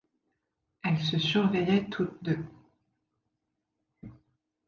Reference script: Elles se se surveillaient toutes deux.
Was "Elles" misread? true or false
false